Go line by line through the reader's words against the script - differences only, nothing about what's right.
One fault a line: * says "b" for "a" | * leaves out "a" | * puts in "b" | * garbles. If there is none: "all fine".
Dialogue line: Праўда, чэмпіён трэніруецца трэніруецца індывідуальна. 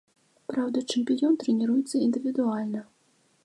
* leaves out "трэніруецца"